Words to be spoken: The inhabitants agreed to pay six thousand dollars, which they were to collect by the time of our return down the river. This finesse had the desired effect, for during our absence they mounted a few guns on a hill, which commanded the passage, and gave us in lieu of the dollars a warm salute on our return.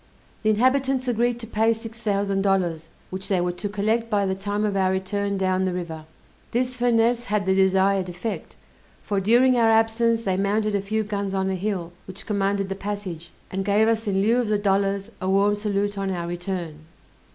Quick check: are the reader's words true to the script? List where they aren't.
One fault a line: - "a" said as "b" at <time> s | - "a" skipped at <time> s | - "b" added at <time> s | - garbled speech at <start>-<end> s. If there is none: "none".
none